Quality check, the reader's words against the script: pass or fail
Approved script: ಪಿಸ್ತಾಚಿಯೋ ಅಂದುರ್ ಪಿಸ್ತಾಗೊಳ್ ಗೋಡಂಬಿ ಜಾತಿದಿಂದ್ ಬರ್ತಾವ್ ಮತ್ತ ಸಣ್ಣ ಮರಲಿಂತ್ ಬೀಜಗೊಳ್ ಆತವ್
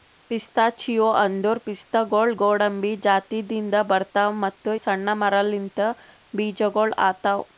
pass